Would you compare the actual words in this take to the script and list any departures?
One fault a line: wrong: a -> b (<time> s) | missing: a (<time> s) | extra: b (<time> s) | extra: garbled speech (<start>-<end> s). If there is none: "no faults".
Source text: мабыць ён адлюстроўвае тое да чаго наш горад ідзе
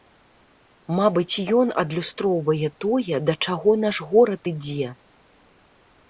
no faults